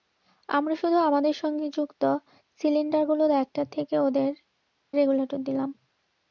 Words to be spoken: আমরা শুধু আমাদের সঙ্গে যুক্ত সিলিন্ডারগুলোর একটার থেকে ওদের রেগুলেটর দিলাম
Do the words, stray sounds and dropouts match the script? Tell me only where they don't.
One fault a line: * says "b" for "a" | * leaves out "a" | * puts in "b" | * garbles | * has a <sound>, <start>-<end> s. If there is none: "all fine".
all fine